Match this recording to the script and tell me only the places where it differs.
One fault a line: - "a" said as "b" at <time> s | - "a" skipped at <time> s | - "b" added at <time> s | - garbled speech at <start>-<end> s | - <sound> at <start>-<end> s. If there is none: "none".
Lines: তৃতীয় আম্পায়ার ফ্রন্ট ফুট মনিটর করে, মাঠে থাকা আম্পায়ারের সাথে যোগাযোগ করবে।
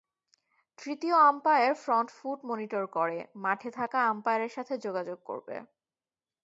none